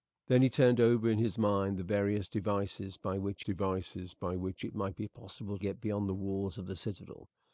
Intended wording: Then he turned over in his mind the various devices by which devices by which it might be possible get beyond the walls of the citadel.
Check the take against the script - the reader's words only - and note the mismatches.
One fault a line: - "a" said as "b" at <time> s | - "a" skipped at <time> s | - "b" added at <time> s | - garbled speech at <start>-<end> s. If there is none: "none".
none